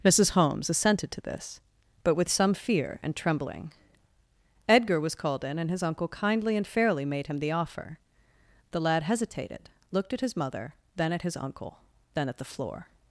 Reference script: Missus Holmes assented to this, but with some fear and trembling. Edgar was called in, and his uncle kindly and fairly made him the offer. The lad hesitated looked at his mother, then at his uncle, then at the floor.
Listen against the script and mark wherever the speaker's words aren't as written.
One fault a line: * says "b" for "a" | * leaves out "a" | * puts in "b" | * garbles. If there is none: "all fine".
all fine